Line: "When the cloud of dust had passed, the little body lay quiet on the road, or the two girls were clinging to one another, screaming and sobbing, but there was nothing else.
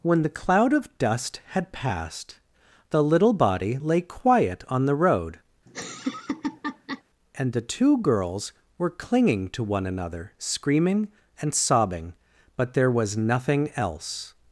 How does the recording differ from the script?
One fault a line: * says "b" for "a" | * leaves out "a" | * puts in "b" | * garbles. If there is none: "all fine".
* says "and" for "or"